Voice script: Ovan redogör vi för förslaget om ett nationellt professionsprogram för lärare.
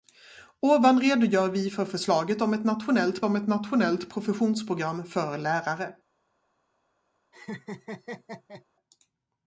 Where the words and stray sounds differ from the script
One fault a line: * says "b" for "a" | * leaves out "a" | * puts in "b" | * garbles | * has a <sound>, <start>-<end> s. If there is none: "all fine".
* puts in "om ett nationellt"
* has a laugh, 7.3-8.6 s